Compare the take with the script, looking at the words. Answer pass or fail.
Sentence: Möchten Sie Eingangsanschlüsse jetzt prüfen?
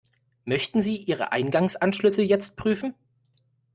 fail